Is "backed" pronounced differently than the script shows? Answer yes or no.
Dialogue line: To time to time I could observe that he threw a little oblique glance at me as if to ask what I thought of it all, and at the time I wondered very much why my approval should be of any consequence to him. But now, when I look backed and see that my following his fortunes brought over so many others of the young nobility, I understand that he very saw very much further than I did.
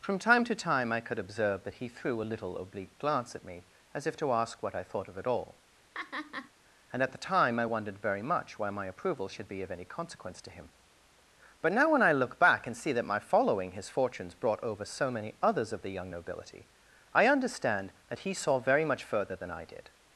yes